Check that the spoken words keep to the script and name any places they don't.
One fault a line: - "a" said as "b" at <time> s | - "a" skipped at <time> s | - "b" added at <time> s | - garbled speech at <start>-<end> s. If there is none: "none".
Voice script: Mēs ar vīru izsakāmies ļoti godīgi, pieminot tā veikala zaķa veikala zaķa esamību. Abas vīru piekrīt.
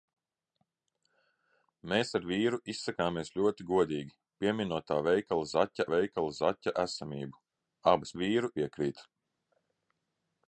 none